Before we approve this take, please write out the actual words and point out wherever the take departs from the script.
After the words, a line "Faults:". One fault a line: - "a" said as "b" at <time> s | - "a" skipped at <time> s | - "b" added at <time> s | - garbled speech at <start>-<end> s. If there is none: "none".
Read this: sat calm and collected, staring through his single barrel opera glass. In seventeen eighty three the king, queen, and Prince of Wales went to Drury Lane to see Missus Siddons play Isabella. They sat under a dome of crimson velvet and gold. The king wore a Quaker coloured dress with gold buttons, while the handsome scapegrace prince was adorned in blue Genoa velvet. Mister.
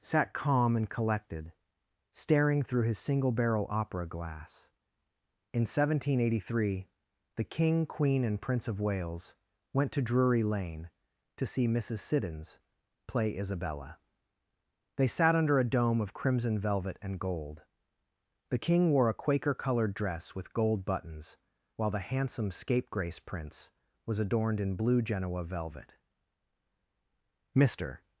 sat calm and collected, staring through his single barrel opera glass. In seventeen eighty three the king, queen, and Prince of Wales went to Drury Lane to see Missus Siddons play Isabella. They sat under a dome of crimson velvet and gold. The king wore a Quaker coloured dress with gold buttons, while the handsome scapegrace prince was adorned in blue Genoa velvet. Mister.
Faults:
none